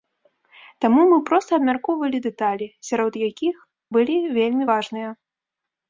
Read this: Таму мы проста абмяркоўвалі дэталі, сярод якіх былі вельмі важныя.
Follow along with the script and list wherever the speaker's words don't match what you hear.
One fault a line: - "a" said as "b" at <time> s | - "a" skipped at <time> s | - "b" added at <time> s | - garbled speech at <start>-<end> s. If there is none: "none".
none